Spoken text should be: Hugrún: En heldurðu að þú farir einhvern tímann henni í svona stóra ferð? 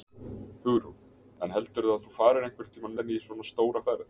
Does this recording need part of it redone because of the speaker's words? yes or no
no